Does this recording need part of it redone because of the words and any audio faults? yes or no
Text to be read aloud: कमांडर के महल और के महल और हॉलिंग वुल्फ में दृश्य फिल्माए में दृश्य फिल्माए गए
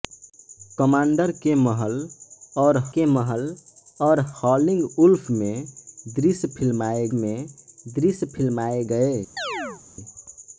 yes